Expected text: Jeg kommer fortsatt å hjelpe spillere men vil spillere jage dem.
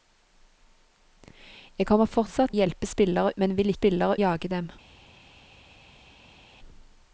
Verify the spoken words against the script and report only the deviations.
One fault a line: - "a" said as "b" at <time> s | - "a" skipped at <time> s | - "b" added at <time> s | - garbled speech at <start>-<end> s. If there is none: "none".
none